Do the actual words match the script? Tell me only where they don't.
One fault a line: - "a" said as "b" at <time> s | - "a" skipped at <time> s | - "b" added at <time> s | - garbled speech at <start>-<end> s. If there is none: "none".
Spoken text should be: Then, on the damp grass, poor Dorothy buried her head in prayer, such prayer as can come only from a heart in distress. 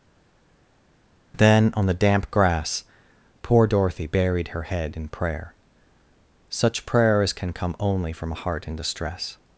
none